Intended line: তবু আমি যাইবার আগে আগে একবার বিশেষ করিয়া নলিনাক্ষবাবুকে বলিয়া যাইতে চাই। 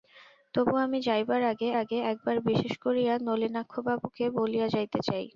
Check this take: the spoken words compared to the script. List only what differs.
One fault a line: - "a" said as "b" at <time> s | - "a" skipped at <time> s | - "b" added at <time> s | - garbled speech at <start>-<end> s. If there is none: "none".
none